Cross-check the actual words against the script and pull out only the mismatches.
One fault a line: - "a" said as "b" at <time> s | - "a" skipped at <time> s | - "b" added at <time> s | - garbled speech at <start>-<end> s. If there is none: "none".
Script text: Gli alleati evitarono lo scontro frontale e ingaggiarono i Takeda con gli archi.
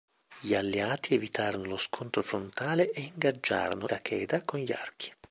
- "i" skipped at 3.9 s